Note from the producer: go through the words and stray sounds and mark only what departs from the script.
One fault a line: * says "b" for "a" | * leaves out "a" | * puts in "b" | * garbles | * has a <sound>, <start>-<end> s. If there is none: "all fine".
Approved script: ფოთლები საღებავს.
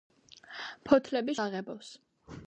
all fine